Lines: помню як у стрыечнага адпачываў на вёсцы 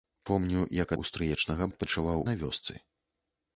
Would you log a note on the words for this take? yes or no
no